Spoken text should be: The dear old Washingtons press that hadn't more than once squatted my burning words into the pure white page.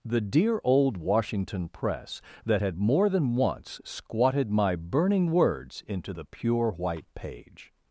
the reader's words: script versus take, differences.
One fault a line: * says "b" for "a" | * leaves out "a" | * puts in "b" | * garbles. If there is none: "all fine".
* says "Washington" for "Washingtons"
* says "had" for "hadn't"